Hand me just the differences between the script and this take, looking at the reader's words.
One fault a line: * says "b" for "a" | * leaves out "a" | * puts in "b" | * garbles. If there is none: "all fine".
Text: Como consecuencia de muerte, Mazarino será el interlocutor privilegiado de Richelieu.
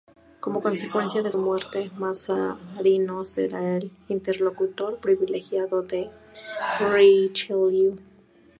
all fine